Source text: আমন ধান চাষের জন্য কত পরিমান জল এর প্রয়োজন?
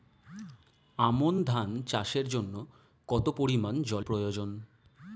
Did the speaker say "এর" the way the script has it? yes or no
no